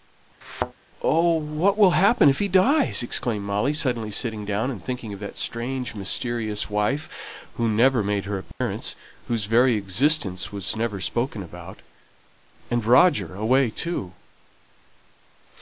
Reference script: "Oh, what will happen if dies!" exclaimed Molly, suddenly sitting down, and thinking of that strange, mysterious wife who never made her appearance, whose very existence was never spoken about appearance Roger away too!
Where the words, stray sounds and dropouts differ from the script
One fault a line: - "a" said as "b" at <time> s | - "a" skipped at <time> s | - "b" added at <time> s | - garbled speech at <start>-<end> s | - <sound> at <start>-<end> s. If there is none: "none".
- thud at 0.4-0.7 s
- "he" added at 2.4 s
- dropout at 8.5-8.6 s
- "appearance" said as "and" at 12.7 s